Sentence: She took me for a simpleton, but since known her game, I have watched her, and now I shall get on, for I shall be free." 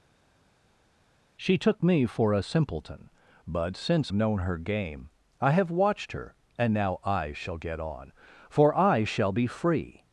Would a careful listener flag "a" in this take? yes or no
no